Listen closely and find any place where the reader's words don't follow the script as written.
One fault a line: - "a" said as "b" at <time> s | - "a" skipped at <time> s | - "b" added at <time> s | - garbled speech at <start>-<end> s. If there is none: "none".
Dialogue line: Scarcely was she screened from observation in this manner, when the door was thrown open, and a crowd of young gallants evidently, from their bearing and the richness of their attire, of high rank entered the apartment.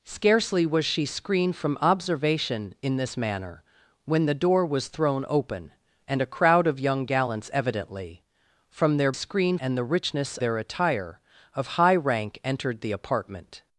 - "bearing" said as "screened" at 9.1 s
- "of" skipped at 10.4 s